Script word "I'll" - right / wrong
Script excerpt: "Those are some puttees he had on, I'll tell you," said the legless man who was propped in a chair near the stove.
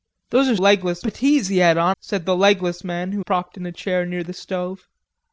wrong